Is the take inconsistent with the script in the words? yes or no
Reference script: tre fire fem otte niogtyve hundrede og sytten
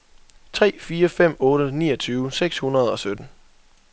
yes